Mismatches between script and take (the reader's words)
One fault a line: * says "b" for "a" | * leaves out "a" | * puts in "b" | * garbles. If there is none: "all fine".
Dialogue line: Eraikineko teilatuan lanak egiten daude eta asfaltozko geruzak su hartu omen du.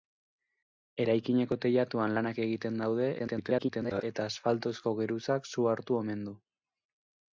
* garbles